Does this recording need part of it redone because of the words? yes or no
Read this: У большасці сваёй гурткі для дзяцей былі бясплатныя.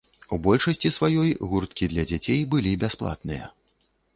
no